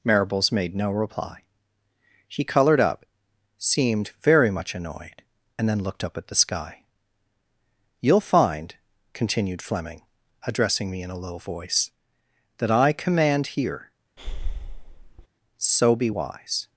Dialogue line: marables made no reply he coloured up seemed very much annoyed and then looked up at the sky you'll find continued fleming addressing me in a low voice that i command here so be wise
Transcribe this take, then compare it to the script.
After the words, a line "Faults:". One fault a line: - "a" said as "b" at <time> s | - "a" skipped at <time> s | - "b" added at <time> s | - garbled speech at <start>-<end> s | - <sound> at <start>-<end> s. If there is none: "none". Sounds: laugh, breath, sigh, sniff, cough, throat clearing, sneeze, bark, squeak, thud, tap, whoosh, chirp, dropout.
marables made no reply she colored up seemed very much annoyed and then looked up at the sky you'll find continued fleming addressing me in a low voice that i command here so be wise
Faults:
- "he coloured" said as "she colored" at 2.3 s
- breath at 14.2-15.3 s